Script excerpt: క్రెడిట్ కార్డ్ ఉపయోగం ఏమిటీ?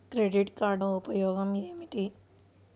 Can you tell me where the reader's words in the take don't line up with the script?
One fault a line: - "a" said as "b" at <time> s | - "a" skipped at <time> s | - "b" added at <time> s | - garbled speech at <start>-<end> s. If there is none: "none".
none